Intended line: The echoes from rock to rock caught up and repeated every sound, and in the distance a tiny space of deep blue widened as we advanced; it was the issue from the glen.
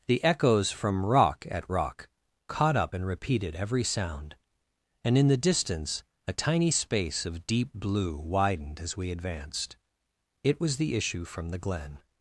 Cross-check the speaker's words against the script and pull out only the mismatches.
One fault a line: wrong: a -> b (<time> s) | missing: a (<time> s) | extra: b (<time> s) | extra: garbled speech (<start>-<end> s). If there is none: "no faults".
wrong: to -> at (1.5 s)